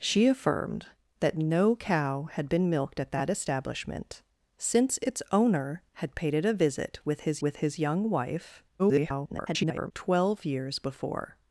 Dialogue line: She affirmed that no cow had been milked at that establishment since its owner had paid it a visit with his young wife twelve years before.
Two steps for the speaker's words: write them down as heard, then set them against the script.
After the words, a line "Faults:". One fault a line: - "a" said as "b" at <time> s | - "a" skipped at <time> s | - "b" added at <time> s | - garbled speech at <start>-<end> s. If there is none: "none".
She affirmed that no cow had been milked at that establishment since its owner had paid it a visit with his with his young wife [garbled] twelve years before.
Faults:
- "with his" added at 7.4 s
- garbled speech at 8.8-9.9 s